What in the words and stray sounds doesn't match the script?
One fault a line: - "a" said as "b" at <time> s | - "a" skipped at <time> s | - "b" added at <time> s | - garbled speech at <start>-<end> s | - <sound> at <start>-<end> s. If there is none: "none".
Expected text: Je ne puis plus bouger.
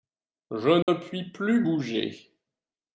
- dropout at 0.8-0.9 s